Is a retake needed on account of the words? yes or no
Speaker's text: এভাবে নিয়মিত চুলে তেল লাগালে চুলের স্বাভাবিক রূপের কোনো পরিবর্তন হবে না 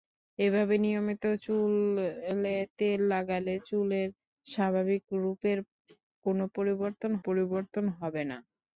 yes